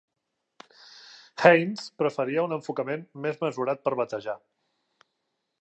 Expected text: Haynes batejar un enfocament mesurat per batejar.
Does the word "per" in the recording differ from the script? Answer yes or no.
no